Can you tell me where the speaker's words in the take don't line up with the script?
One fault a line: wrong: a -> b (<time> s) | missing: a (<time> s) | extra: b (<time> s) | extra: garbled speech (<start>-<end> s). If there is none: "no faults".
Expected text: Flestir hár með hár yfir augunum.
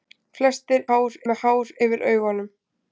no faults